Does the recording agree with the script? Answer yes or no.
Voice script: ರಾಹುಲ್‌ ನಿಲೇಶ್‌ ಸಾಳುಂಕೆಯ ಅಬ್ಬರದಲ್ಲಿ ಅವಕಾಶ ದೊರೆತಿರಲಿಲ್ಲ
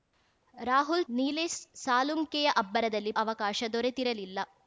yes